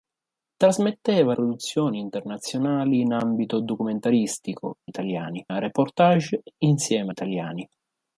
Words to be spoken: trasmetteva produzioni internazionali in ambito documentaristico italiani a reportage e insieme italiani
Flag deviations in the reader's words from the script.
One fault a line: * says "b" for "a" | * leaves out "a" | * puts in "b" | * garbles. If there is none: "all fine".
all fine